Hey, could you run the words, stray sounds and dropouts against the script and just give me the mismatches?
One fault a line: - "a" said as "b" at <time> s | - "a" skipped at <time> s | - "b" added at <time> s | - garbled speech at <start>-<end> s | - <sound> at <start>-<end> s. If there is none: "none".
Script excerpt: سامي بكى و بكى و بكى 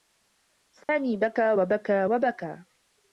- dropout at 0.8-0.9 s